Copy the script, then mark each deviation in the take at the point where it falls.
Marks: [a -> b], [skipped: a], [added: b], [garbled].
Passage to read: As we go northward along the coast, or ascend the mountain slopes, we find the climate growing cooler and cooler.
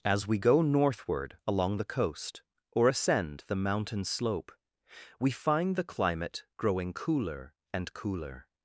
As we go northward along the coast, or ascend the mountain [slopes, -> slope] we find the climate growing cooler and cooler.